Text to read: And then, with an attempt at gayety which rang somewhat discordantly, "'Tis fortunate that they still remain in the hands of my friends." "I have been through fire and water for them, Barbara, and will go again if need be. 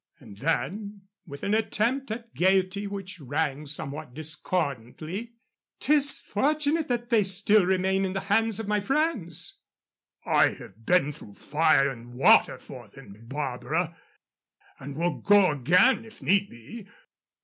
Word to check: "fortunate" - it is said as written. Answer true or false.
true